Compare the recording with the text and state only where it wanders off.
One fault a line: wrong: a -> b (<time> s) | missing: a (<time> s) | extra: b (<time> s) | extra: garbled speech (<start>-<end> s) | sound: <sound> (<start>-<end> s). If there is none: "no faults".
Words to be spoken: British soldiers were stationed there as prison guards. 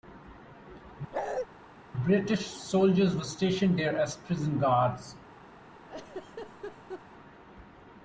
sound: bark (1.1-1.5 s)
sound: laugh (5.8-7.0 s)